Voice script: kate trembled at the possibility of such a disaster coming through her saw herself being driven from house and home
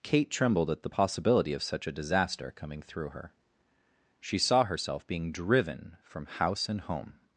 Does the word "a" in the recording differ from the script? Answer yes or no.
no